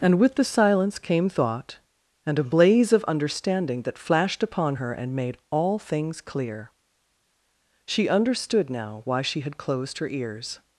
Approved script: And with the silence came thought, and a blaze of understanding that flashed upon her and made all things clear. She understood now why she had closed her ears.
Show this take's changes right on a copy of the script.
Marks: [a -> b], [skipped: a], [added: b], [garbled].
And with the silence came thought, and a blaze of understanding that flashed upon her and made all things clear. She understood now why she had closed her ears.